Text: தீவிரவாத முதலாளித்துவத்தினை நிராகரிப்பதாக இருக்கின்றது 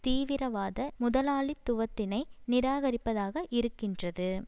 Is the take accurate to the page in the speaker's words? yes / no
yes